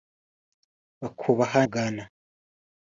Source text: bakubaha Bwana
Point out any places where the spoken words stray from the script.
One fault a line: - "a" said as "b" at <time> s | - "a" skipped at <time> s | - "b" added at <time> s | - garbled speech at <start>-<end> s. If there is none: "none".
none